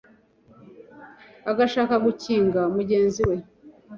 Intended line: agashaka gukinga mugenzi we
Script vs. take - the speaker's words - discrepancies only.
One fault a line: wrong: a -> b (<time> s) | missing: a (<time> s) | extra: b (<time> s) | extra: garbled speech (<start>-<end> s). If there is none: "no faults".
no faults